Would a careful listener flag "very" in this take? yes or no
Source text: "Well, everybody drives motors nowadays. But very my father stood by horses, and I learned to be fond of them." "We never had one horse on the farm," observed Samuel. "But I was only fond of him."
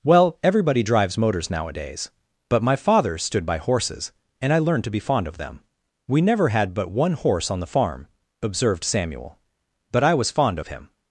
yes